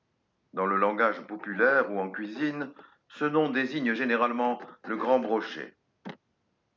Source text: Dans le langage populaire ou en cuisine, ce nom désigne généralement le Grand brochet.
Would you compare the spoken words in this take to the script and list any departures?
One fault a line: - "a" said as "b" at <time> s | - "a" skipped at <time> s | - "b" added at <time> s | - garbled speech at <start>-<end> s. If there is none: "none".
none